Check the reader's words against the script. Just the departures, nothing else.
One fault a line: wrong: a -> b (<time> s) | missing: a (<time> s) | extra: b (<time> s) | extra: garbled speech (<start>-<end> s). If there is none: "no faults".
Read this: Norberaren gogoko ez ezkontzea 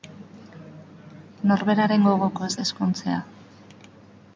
no faults